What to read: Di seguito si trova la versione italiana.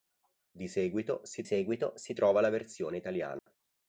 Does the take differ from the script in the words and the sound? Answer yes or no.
yes